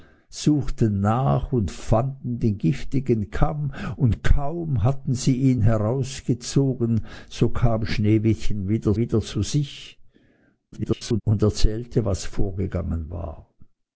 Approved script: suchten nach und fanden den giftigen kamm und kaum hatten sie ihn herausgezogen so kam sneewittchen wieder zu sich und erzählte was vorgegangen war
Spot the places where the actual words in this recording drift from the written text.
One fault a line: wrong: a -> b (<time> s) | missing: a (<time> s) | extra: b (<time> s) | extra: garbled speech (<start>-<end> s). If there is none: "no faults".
extra: wieder (9.0 s)
extra: garbled speech (10.7-11.2 s)